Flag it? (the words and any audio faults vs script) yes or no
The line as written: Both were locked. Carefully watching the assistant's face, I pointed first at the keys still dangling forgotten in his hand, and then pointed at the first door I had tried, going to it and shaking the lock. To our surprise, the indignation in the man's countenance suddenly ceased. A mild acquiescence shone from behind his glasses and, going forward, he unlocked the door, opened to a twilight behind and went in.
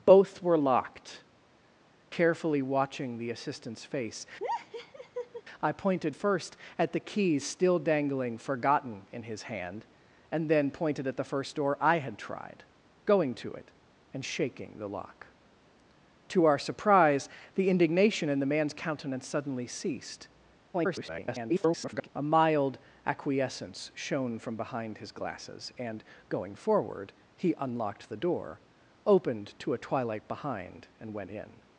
yes